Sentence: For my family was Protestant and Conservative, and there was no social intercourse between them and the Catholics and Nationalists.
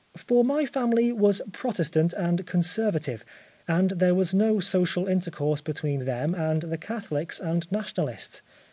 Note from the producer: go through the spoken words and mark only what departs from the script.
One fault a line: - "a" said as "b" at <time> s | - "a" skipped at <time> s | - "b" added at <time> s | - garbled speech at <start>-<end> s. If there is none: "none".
none